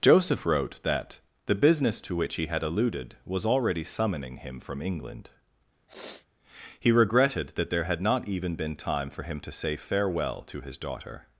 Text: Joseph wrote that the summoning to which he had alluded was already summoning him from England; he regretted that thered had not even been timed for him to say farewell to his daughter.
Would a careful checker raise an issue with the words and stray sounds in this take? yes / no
yes